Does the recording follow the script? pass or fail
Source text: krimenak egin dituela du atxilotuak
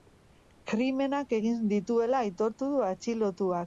fail